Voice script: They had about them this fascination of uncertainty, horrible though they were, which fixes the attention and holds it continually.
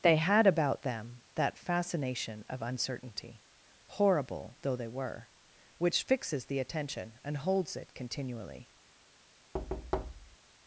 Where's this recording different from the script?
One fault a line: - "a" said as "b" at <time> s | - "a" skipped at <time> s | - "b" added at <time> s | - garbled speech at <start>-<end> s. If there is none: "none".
- "this" said as "that" at 1.4 s